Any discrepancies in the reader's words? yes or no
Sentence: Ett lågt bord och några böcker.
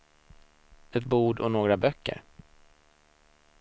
yes